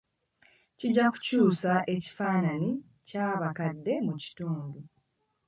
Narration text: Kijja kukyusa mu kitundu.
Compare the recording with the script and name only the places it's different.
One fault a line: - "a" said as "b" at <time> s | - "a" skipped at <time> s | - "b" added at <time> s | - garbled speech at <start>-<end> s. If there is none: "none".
- "ekifaananyi ky'abakadde" added at 1.9 s